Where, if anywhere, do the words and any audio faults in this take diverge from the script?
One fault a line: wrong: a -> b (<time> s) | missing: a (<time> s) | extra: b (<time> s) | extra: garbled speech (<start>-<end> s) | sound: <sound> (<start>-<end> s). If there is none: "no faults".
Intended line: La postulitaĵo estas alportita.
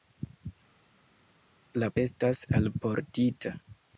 missing: postulitaĵo (1.9 s)